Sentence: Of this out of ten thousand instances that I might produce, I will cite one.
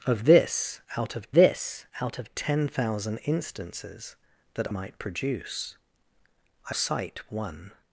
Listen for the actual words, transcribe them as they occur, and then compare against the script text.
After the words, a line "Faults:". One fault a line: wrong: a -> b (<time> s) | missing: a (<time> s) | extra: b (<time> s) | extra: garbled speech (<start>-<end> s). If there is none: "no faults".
Of this out of this out of ten thousand instances that might produce, I cite one.
Faults:
extra: this out of (1.3 s)
missing: I (4.7 s)
missing: will (6.8 s)